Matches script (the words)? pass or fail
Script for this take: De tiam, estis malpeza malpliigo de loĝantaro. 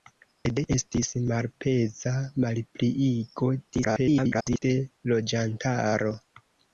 fail